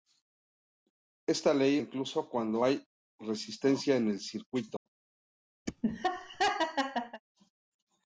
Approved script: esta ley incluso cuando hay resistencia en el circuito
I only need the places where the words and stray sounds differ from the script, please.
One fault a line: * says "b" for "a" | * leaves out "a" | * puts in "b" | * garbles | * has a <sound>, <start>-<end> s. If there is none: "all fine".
* has a dropout, 4.8-4.9 s
* has a laugh, 5.7-7.2 s